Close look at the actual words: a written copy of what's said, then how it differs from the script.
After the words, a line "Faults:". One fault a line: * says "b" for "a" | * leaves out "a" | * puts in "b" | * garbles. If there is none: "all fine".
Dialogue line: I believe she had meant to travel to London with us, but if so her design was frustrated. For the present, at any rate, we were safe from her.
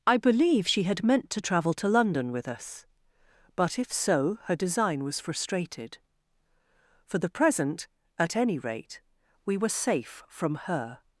I believe she had meant to travel to London with us, but if so her design was frustrated. For the present, at any rate, we were safe from her.
Faults:
all fine